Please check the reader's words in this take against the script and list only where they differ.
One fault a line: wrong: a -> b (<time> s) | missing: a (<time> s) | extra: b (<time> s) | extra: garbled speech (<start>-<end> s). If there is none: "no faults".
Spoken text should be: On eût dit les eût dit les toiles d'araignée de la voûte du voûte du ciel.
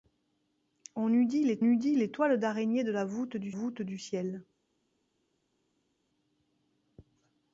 no faults